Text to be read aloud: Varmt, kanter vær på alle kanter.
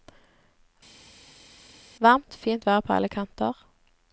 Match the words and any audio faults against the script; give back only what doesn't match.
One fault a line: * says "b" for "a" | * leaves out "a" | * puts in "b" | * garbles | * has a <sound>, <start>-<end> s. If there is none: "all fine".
* says "fint" for "kanter"